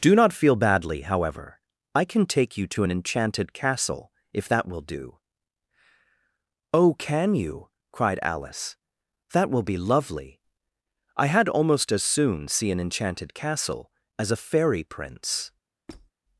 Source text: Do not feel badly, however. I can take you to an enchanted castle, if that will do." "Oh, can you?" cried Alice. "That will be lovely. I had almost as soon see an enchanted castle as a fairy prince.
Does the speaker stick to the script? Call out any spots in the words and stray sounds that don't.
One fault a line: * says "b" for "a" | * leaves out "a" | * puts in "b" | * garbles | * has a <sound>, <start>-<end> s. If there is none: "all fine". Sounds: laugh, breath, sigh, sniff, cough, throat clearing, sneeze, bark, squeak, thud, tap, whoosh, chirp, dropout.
* has a squeak, 15.9-16.1 s